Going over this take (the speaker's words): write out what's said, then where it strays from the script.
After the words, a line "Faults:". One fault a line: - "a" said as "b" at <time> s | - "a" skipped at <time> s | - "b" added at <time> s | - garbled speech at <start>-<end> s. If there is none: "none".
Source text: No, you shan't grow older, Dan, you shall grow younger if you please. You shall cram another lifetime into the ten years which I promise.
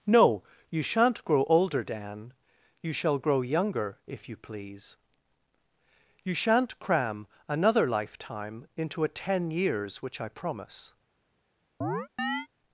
No, you shan't grow older, Dan, you shall grow younger if you please. You shan't cram another lifetime into a ten years which I promise.
Faults:
- "shall" said as "shan't" at 6.3 s
- "the" said as "a" at 9.0 s